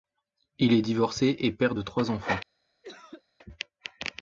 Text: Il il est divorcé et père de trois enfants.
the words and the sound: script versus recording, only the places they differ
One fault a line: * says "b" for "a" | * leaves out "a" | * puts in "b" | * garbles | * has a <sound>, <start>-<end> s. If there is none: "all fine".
* leaves out "il"
* has a cough, 2.8-3.2 s